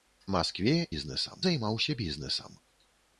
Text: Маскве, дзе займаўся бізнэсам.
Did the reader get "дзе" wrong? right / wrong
wrong